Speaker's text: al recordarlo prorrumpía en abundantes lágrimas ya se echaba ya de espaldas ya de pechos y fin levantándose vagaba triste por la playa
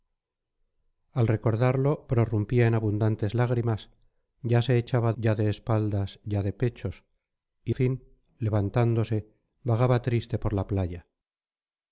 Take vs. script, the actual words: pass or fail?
pass